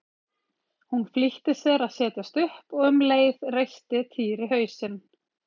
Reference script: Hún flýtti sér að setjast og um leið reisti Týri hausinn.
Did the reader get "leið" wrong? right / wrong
right